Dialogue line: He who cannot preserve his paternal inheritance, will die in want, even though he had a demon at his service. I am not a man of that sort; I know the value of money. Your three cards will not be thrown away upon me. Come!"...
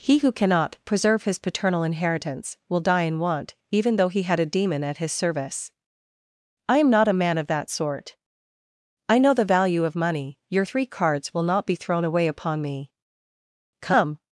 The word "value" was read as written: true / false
true